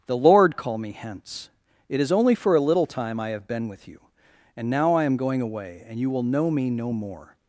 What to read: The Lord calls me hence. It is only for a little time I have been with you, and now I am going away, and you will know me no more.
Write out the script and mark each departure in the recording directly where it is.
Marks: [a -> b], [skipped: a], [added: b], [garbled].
The Lord [calls -> call] me hence. It is only for a little time I have been with you, and now I am going away, and you will know me no more.